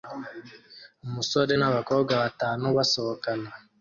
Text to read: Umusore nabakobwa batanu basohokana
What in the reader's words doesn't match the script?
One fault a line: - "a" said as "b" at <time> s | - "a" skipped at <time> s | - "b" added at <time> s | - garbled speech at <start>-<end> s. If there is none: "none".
none